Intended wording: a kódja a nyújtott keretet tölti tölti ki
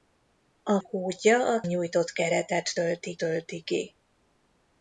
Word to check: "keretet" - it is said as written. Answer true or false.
true